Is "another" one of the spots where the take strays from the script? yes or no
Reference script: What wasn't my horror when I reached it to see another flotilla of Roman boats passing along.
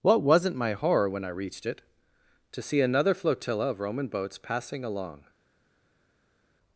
no